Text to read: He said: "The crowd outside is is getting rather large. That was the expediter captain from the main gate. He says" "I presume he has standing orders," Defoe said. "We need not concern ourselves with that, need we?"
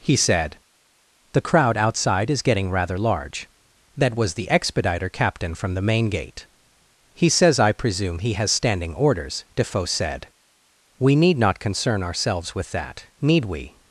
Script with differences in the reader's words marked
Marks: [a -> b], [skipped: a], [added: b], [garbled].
He said: "The crowd outside is [skipped: is] getting rather large. That was the expediter captain from the main gate. He says" "I presume he has standing orders," Defoe said. "We need not concern ourselves with that, need we?"